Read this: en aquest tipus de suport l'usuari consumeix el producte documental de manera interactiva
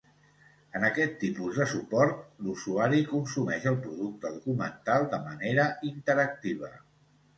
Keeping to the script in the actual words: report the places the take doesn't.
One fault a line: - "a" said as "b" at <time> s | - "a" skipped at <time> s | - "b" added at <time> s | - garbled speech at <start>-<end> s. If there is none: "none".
none